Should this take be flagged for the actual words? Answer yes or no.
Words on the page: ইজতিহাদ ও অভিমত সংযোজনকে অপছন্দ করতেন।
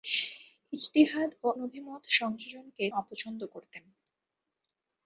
no